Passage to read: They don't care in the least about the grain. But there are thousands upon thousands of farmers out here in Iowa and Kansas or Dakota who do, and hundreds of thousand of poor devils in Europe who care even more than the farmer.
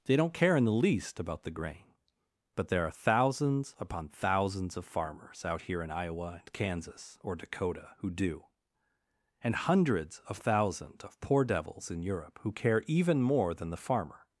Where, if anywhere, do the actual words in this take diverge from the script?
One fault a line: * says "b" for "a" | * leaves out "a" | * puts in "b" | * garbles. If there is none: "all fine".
* says "thousands" for "thousand"